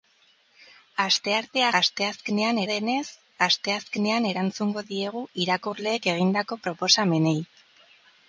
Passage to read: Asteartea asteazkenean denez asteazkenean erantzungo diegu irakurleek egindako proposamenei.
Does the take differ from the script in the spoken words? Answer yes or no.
no